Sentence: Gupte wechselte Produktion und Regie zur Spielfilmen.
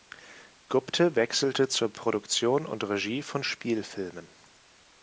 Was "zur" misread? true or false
true